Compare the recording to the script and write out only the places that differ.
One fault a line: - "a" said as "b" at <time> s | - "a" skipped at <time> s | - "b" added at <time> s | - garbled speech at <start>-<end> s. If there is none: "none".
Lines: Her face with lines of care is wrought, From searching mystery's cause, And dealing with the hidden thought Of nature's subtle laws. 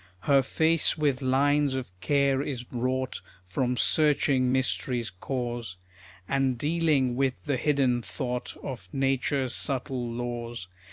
none